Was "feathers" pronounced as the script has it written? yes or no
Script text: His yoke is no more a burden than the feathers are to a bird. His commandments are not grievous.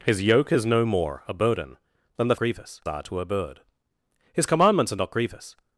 no